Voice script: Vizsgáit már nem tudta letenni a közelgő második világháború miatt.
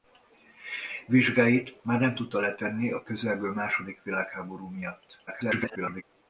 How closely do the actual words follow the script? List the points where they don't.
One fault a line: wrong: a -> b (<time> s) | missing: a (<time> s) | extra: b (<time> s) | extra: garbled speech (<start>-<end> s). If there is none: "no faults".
extra: garbled speech (5.3-6.0 s)